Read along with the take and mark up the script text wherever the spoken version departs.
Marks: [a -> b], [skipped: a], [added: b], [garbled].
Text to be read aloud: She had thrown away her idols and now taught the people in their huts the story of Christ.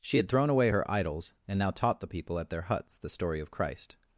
She had thrown away her idols and now taught the people [in -> at] their huts the story of Christ.